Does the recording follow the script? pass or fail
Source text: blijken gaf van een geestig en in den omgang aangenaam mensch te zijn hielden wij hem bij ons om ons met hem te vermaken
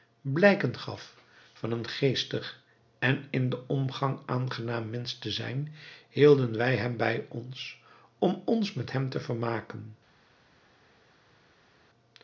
pass